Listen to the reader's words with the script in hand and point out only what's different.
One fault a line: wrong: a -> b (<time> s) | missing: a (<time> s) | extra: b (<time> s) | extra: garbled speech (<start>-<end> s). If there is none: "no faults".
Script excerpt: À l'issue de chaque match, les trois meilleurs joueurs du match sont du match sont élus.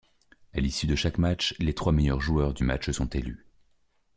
missing: du match sont (3.1 s)